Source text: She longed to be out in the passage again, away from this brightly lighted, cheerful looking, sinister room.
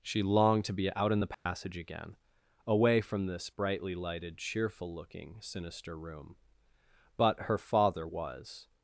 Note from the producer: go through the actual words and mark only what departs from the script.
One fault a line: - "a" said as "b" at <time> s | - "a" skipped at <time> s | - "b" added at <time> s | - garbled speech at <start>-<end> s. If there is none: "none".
- "But her father was" added at 7.2 s